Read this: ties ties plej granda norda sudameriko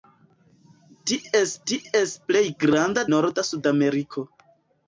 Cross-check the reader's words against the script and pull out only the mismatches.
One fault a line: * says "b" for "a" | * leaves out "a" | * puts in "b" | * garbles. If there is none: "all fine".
all fine